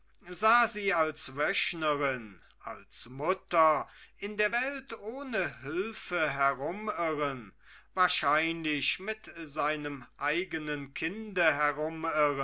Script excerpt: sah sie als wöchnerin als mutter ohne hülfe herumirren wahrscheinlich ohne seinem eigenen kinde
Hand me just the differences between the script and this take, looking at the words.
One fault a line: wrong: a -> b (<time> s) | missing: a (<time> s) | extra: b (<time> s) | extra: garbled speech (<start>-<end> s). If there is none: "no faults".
extra: in der welt (4.2 s)
wrong: ohne -> mit (9.0 s)